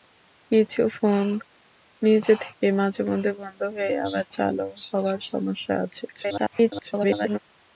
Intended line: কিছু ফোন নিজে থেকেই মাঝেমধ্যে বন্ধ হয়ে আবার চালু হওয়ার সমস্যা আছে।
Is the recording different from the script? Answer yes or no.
yes